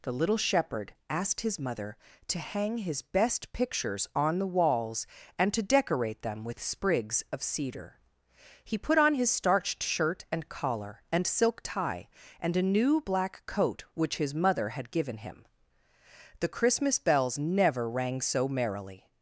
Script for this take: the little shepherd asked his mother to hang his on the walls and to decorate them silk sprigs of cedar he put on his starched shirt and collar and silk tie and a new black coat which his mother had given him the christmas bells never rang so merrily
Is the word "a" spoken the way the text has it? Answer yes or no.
yes